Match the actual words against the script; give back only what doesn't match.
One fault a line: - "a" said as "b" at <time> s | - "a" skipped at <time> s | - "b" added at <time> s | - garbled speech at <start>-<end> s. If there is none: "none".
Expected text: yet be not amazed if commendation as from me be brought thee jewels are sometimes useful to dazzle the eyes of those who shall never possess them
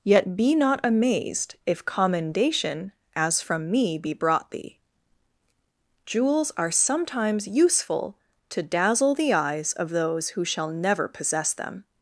none